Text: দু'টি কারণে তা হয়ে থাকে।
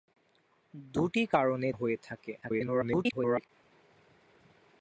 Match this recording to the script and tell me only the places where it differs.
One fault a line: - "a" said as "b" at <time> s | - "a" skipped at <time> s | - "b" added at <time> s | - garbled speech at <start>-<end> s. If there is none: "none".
- "তা" skipped at 1.7 s
- garbled speech at 2.4-3.5 s